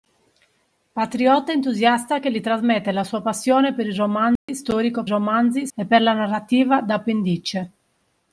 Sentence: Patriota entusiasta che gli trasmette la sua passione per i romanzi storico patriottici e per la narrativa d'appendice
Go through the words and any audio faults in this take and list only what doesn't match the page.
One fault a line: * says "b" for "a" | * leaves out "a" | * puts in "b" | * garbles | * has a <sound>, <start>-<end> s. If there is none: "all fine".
* has a dropout, 4.4-4.5 s
* says "romanzi" for "patriottici"